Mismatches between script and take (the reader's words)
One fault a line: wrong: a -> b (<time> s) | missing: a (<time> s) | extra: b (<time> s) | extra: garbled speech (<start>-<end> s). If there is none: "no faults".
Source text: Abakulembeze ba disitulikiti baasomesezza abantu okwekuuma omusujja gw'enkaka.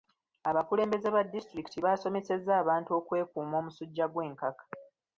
no faults